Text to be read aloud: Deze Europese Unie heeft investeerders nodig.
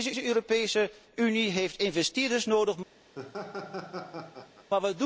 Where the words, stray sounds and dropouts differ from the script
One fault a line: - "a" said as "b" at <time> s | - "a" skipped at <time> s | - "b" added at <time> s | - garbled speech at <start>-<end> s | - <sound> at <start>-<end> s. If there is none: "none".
- "deze" added at 0.1 s
- laugh at 3.1-4.7 s